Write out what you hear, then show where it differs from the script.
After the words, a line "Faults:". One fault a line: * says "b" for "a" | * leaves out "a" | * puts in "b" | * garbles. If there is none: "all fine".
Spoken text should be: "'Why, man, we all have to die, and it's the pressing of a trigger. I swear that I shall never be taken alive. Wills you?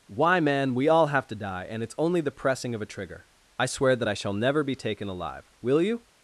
"'Why, man, we all have to die, and it's only the pressing of a trigger. I swear that I shall never be taken alive. Will you?
Faults:
* puts in "only"
* says "Will" for "Wills"